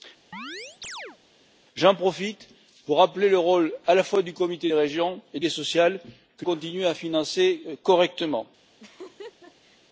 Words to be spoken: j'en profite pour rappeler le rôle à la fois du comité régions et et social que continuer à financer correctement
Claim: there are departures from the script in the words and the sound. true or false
true